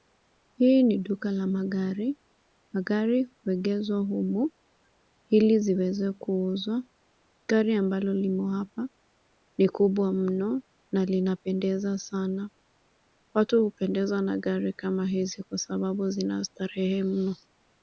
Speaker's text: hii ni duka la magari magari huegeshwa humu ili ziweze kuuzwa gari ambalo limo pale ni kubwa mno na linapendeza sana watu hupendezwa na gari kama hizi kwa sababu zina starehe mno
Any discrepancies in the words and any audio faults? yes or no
yes